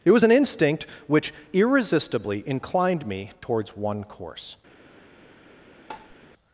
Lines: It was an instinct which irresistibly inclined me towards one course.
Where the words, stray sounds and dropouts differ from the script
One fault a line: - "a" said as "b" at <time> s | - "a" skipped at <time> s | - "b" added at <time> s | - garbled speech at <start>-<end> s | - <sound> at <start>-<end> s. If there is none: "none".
- tap at 5.9-6.2 s